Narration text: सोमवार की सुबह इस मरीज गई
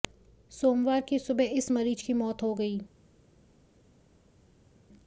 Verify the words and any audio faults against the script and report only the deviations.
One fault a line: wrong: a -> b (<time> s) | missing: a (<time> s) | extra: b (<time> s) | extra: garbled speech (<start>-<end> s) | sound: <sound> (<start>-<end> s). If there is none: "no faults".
extra: की मौत हो (2.0 s)